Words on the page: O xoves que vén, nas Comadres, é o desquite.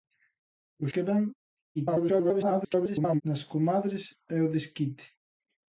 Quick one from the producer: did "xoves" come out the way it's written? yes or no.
no